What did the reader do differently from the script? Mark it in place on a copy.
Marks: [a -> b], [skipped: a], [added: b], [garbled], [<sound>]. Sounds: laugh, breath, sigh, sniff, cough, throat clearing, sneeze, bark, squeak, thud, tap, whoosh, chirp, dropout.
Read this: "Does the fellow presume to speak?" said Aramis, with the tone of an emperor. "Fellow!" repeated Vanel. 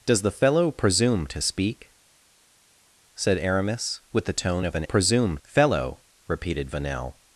"Does the fellow presume to speak?" said Aramis, with the tone of an [emperor. -> presume] "Fellow!" repeated Vanel.